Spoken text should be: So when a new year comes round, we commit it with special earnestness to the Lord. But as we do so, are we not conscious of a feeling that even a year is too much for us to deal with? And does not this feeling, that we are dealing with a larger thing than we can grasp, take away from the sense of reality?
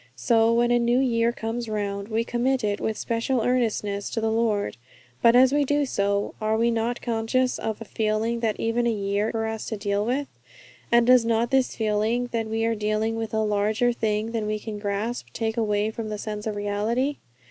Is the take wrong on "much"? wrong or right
wrong